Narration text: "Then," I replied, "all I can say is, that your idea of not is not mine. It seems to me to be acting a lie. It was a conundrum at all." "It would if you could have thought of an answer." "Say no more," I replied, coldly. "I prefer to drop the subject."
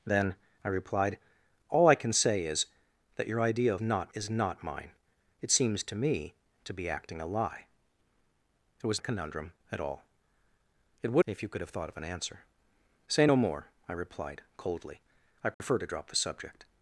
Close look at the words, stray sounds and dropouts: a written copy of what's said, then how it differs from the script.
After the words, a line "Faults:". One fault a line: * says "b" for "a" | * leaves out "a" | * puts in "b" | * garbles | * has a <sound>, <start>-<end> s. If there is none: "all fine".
"Then," I replied, "all I can say is, that your idea of not is not mine. It seems to me to be acting a lie. It was a conundrum at all." "It would if you could have thought of an answer." "Say no more," I replied, coldly. "I prefer to drop the subject."
Faults:
* has a dropout, 15.5-15.6 s